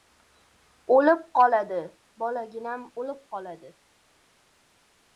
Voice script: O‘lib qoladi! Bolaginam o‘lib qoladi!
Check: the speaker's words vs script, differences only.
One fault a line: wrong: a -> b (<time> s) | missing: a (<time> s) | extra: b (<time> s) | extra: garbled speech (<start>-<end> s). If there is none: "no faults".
no faults